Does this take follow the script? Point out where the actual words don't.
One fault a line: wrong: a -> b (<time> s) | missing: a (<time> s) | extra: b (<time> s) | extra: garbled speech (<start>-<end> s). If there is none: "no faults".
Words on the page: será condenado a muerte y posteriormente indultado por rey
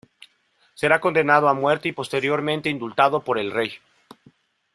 extra: el (3.4 s)